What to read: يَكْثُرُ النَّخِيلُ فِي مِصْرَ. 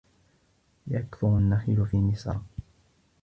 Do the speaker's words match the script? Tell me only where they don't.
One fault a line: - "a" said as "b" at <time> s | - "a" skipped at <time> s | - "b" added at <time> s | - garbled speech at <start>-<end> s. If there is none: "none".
none